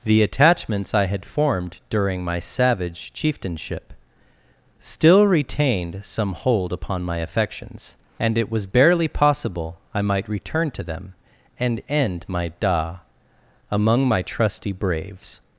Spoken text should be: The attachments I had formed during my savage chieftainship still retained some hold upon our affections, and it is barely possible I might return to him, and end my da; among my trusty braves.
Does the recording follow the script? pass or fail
fail